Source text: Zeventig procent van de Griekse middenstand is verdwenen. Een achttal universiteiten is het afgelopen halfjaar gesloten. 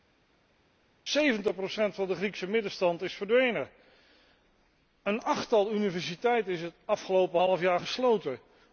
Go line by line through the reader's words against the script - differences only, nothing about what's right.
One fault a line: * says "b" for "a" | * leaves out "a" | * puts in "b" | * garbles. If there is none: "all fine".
all fine